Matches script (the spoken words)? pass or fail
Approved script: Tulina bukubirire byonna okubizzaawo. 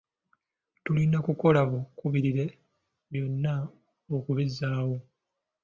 fail